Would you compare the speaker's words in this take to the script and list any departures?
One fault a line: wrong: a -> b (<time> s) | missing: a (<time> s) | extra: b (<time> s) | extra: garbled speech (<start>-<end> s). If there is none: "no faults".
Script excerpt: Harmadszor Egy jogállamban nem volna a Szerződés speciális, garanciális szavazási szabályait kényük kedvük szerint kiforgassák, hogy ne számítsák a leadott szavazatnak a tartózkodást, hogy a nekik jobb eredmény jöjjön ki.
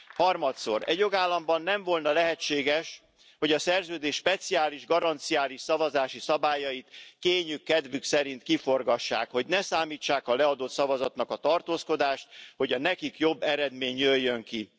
extra: lehetséges hogy (2.1 s)